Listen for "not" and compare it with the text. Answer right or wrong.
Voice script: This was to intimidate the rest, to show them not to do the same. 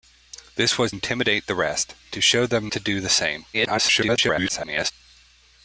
wrong